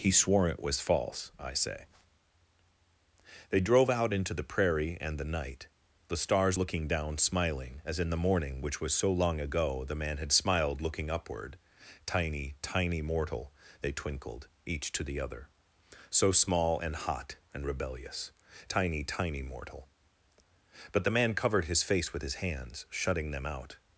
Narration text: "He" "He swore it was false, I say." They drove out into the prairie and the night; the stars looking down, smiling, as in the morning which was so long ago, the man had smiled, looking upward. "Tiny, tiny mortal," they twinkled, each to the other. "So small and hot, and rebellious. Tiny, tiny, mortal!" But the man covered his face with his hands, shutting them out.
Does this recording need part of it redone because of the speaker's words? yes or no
yes